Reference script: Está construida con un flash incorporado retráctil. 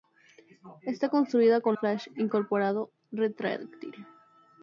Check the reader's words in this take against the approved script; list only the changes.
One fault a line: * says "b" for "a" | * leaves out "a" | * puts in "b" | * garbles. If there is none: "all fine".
* leaves out "un"